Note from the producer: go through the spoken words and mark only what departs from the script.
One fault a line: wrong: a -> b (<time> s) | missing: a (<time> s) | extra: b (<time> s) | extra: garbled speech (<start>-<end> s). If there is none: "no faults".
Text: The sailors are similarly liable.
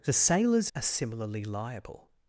no faults